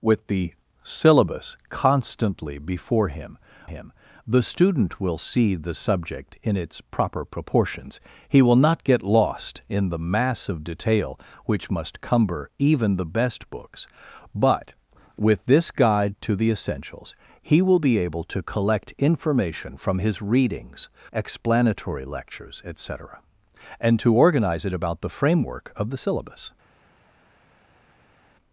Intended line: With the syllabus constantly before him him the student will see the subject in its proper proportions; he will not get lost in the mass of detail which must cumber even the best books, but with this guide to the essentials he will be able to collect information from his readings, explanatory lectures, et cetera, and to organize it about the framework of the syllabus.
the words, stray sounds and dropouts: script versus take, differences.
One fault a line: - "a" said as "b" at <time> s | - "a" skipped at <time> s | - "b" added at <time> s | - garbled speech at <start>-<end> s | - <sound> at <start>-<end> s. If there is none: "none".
none